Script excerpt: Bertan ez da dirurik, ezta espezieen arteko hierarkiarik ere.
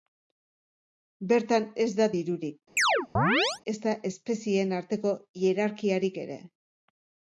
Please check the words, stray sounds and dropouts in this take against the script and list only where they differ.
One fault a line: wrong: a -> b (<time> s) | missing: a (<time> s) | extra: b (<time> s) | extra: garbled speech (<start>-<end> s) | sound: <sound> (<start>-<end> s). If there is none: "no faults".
sound: chirp (2.8-3.6 s)